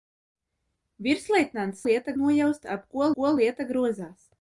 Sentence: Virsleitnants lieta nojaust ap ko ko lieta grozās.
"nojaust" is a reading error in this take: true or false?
false